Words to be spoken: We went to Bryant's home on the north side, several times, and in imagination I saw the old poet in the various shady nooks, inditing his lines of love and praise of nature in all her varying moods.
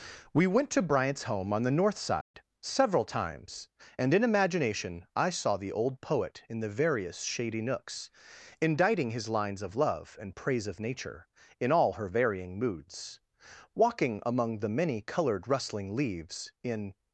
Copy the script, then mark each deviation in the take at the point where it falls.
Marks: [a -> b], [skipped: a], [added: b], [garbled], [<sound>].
We went to Bryant's home on the north side, [dropout] several times, and in imagination I saw the old poet in the various shady nooks, inditing his lines of love and praise of nature in all her varying moods. [added: Walking among the many colored rustling leaves in]